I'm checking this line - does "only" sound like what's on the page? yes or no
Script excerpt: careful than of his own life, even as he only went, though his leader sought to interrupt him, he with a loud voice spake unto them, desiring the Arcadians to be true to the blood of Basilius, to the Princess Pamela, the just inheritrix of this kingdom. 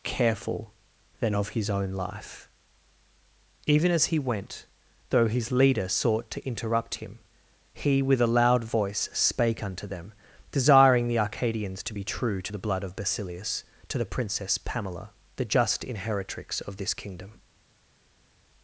no